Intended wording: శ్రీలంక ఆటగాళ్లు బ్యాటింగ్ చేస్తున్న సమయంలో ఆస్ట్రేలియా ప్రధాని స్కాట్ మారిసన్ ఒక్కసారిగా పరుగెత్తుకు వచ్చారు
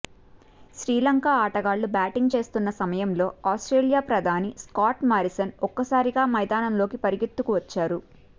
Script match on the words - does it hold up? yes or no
no